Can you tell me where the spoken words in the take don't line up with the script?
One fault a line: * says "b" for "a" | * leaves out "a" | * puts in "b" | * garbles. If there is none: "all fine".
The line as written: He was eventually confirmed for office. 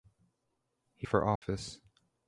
* leaves out "was eventually confirmed"